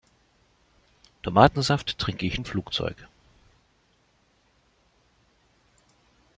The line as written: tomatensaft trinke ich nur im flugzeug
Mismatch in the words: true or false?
true